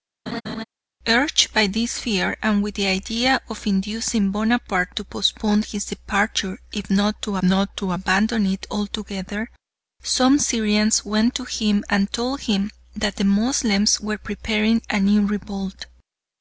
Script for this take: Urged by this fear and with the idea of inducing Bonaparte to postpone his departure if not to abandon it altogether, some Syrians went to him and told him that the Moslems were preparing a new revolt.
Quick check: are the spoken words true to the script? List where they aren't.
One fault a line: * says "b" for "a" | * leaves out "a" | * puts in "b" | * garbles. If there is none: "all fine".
* puts in "not to"